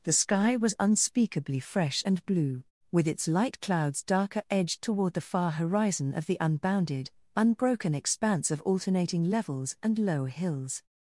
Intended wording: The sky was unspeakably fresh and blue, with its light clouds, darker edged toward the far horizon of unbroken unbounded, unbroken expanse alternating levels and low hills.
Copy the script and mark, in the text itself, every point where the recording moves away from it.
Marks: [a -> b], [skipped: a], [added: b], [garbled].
The sky was unspeakably fresh and blue, with its light clouds, darker edged toward the far horizon of [unbroken -> the] unbounded, unbroken expanse [added: of] alternating levels and low hills.